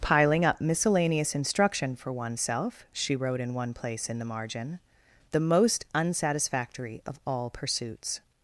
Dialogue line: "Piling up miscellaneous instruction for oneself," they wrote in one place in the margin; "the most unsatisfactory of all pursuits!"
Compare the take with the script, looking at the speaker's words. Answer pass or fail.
fail